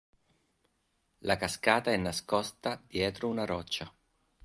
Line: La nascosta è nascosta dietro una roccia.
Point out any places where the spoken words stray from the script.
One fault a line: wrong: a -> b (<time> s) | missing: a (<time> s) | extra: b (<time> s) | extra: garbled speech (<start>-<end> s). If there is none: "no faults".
wrong: nascosta -> cascata (1.4 s)